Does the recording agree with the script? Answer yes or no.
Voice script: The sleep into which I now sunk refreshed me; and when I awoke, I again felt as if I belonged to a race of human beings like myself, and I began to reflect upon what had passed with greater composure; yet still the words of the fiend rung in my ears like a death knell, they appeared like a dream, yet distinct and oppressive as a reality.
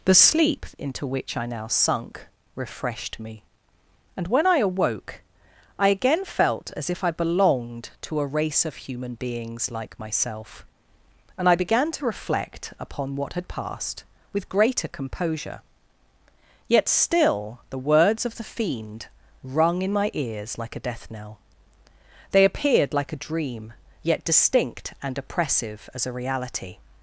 yes